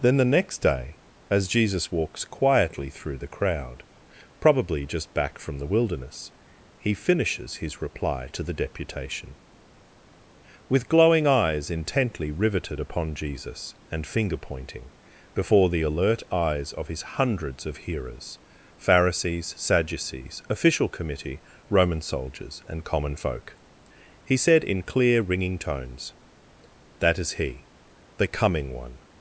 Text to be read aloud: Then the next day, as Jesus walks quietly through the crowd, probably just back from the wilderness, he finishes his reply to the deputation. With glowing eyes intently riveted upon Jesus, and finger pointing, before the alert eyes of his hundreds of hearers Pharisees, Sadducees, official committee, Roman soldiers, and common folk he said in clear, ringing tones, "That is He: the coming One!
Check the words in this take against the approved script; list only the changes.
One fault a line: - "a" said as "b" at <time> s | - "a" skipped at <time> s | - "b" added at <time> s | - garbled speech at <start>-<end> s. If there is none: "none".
none